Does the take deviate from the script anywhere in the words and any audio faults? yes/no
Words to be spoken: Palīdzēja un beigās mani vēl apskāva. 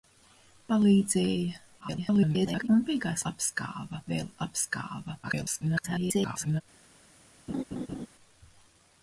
yes